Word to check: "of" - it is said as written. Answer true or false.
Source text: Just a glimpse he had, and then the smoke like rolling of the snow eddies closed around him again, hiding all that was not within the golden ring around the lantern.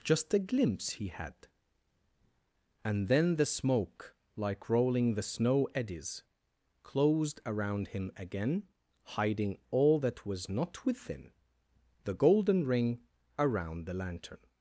false